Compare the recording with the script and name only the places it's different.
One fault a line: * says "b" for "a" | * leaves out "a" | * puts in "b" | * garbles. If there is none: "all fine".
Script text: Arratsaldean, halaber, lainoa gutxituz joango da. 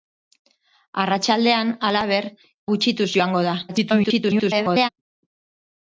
* leaves out "lainoa"
* garbles